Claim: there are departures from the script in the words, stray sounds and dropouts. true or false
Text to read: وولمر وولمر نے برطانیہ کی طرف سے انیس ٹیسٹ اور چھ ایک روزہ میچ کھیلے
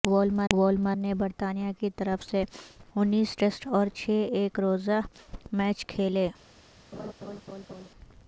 true